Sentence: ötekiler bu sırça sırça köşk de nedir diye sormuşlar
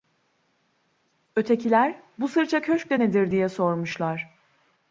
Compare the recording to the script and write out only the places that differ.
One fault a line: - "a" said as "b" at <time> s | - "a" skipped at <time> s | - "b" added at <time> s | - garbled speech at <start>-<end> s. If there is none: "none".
- "sırça" skipped at 2.6 s